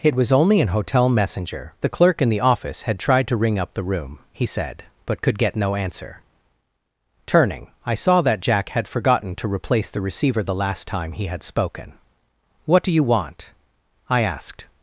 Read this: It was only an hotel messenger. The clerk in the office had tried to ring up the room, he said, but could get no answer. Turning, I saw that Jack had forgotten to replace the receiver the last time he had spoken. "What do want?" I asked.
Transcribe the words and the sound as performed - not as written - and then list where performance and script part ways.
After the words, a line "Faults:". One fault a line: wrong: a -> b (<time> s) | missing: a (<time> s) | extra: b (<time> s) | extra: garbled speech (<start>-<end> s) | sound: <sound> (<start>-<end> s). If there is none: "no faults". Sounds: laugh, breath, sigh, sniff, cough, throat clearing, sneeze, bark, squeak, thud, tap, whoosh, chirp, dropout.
It was only an hotel messenger. The clerk in the office had tried to ring up the room, he said, but could get no answer. Turning, I saw that Jack had forgotten to replace the receiver the last time he had spoken. "What do you want?" I asked.
Faults:
extra: you (12.9 s)